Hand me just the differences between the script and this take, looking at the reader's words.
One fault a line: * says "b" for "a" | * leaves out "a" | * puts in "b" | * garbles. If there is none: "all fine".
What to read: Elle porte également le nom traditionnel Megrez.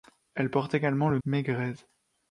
* leaves out "nom traditionnel"